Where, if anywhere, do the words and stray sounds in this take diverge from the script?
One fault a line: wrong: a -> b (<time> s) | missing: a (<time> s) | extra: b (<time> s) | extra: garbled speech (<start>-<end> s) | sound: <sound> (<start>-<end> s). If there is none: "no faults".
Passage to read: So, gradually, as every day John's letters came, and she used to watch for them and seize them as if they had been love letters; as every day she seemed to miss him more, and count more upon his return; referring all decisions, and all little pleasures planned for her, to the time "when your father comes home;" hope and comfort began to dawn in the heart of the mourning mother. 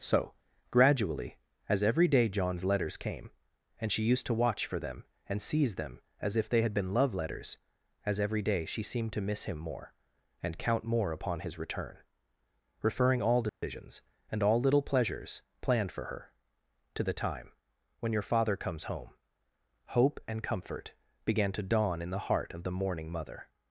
sound: dropout (13.5-13.6 s)